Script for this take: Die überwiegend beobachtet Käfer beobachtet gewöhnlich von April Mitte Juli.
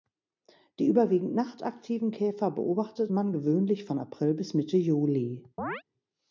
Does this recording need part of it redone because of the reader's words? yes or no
yes